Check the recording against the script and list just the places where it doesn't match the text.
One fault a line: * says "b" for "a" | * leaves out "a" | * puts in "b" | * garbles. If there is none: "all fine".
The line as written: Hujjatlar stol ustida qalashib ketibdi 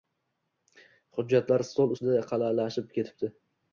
all fine